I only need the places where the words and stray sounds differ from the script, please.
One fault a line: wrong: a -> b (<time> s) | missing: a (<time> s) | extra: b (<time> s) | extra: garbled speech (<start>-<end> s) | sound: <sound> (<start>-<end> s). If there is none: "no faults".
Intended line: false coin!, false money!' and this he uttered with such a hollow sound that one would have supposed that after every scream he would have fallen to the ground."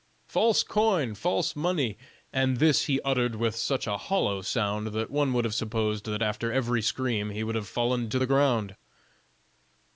no faults